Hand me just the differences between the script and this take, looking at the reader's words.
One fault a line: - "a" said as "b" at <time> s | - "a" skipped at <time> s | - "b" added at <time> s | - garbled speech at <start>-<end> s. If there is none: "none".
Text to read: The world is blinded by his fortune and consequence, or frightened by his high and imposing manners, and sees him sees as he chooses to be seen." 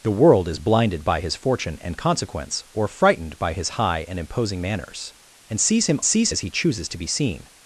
none